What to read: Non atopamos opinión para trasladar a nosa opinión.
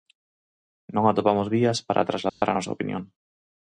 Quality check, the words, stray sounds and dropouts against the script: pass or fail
fail